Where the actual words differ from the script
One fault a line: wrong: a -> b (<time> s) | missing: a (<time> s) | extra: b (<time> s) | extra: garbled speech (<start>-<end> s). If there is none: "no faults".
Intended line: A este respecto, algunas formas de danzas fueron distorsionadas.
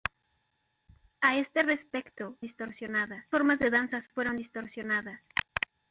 wrong: algunas -> distorsionadas (2.4 s)